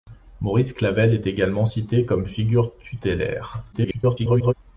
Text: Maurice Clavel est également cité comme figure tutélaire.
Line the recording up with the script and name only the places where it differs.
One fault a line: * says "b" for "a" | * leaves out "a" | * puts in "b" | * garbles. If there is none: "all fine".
* garbles